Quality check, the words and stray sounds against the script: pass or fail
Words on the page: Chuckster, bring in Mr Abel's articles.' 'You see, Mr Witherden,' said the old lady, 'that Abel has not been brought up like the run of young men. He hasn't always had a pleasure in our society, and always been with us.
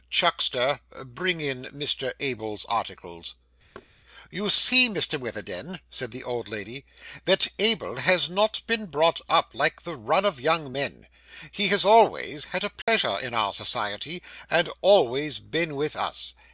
fail